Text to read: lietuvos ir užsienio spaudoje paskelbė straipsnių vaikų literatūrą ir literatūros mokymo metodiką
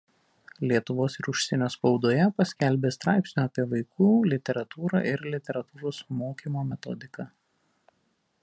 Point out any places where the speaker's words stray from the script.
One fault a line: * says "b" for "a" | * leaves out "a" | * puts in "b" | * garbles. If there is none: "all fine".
* puts in "apie"